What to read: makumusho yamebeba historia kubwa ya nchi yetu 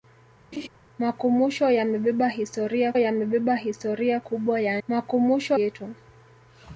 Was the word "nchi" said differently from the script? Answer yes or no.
yes